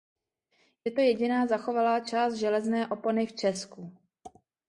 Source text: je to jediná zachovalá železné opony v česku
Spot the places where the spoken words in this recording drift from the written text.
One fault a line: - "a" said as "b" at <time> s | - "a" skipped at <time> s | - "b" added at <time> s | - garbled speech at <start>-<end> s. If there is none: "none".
- "část" added at 2.0 s